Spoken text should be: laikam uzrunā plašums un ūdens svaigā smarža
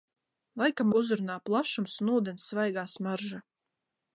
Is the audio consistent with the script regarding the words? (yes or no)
yes